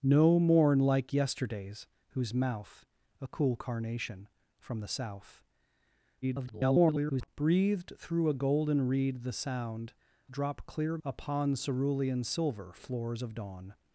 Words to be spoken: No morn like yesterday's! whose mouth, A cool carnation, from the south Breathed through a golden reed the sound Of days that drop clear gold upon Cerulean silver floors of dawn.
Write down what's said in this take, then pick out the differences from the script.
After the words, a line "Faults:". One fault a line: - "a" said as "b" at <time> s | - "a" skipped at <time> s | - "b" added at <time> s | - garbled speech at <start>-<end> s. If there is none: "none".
No morn like yesterday's! whose mouth, A cool carnation, from the south [garbled] Breathed through a golden reed the sound Drop clear upon Cerulean silver floors of dawn.
Faults:
- garbled speech at 6.2-7.3 s
- "Of days that" skipped at 9.9 s
- "gold" skipped at 11.0 s